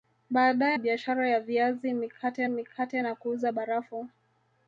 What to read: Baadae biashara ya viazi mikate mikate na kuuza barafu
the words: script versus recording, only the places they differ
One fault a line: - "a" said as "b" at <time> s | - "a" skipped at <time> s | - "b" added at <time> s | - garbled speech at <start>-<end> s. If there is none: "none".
none